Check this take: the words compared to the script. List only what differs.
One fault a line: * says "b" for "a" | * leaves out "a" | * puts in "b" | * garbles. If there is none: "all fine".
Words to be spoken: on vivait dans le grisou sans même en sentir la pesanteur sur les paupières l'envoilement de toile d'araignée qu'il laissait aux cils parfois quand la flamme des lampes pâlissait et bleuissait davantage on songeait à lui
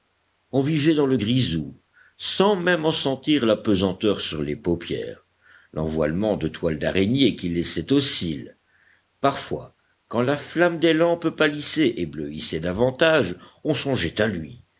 all fine